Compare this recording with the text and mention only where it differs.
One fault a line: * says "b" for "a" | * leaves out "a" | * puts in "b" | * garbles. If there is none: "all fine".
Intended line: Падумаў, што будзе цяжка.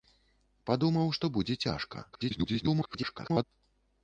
* garbles